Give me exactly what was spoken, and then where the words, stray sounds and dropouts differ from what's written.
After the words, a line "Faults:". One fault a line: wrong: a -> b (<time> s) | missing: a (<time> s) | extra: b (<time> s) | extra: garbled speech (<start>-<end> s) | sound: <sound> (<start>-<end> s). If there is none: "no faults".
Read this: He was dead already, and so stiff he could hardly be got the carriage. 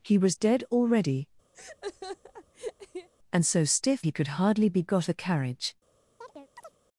He was dead already, and so stiff he could hardly be got the carriage.
Faults:
sound: laugh (1.5-3.1 s)
sound: chirp (6.2-6.8 s)